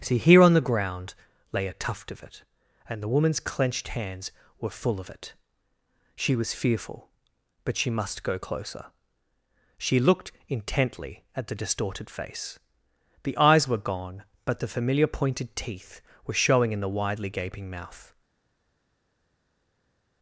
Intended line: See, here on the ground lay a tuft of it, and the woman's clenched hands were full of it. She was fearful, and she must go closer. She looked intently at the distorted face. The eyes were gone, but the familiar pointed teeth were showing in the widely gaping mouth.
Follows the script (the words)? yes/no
no